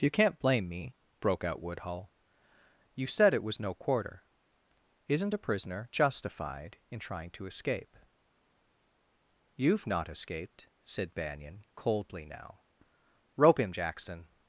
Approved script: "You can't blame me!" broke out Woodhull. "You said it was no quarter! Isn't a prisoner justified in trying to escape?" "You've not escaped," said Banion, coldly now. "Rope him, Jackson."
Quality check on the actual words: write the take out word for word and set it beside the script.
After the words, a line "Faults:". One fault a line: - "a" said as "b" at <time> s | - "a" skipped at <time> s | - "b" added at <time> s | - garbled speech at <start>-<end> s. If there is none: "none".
"You can't blame me!" broke out Woodhull. "You said it was no quarter! Isn't a prisoner justified in trying to escape?" "You've not escaped," said Banion, coldly now. "Rope him, Jackson."
Faults:
none